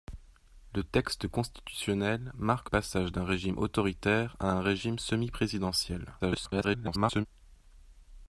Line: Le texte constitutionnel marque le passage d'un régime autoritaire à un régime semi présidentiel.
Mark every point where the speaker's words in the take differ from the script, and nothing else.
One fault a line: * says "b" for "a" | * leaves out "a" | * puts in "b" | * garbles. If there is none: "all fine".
* leaves out "le"
* garbles